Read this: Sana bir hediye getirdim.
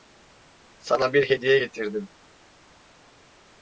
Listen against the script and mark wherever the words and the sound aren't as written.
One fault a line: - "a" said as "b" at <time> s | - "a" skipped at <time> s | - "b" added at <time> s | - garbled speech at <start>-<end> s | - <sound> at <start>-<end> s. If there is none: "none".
none